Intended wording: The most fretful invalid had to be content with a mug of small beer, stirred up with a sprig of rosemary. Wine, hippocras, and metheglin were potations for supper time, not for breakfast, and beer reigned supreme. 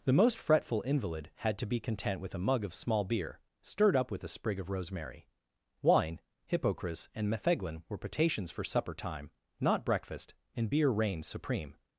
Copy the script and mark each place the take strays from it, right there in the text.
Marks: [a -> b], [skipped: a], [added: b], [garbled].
The most fretful invalid had to be content with a mug of small beer, stirred up with a sprig of rosemary. Wine, hippocras, and metheglin were potations for supper time, not [skipped: for] breakfast, and beer reigned supreme.